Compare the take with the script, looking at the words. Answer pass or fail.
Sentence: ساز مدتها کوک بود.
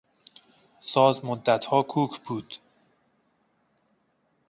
pass